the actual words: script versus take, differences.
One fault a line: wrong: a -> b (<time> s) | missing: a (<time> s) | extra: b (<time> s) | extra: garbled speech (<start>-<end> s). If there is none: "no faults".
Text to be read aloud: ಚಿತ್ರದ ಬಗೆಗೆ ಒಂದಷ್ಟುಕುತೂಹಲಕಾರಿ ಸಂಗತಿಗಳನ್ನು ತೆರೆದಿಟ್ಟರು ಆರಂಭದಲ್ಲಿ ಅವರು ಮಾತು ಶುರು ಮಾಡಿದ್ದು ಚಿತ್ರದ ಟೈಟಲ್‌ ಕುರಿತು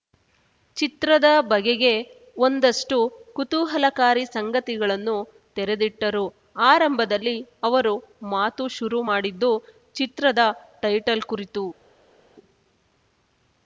no faults